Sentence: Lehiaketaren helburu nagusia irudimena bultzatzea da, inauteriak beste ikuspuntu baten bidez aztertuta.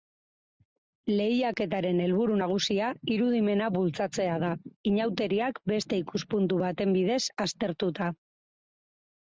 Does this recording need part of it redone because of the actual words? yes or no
no